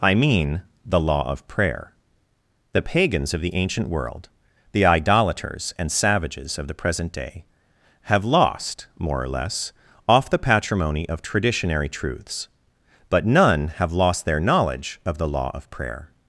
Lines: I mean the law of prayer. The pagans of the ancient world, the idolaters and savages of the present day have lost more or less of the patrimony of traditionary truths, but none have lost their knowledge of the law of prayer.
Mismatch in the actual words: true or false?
true